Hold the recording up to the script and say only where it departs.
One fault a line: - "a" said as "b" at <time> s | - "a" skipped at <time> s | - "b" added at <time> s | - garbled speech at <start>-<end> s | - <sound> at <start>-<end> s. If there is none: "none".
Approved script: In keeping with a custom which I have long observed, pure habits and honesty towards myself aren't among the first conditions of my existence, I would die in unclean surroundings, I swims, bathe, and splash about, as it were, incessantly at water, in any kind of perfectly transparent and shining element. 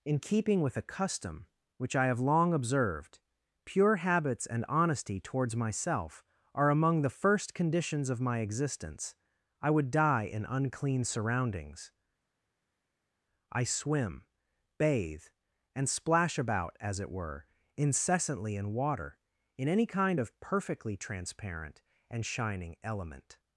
- "aren't" said as "are" at 6.5 s
- "swims" said as "swim" at 13.6 s
- "at" said as "in" at 18.6 s